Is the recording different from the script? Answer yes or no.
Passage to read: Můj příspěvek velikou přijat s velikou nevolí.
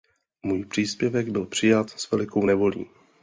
yes